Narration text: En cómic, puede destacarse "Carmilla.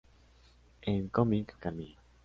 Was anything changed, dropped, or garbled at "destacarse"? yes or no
yes